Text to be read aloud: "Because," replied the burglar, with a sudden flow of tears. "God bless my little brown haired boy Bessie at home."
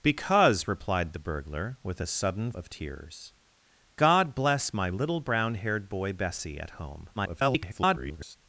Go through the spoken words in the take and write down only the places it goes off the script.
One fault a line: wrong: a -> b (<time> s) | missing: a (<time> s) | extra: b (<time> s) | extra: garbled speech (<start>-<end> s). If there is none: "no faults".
missing: flow (2.5 s)
extra: garbled speech (7.2-8.4 s)